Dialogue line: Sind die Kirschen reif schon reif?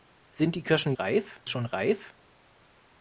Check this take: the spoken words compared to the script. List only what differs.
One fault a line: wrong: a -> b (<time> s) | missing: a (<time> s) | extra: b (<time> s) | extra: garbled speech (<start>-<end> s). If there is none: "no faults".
no faults